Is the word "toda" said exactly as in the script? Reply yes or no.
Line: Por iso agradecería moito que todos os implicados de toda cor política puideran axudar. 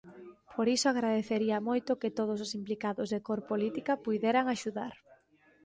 no